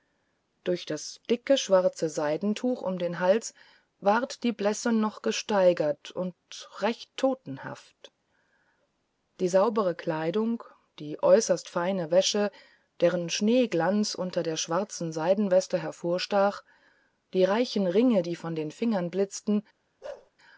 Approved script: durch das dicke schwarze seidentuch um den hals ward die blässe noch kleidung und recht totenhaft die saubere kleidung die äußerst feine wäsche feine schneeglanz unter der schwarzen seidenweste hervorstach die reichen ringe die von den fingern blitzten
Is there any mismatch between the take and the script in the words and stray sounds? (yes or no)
yes